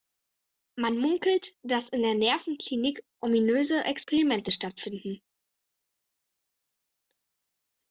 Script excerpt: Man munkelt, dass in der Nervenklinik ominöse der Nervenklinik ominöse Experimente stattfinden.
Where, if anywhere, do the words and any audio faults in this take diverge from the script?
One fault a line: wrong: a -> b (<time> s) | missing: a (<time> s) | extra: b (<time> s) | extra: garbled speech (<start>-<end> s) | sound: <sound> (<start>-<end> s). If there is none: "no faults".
missing: der Nervenklinik ominöse (3.8 s)